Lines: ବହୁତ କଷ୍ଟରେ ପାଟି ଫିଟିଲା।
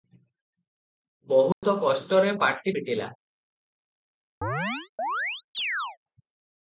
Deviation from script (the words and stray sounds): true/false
true